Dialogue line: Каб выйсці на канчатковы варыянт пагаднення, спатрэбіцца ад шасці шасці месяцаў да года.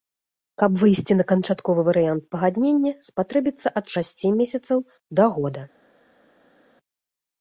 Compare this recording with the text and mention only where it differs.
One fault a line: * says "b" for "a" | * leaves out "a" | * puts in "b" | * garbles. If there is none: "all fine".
* leaves out "шасці"